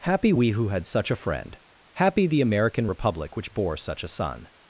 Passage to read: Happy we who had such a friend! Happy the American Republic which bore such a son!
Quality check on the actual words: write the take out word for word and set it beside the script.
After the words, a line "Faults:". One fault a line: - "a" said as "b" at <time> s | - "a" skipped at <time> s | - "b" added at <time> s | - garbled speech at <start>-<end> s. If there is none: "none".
Happy we who had such a friend! Happy the American Republic which bore such a son!
Faults:
none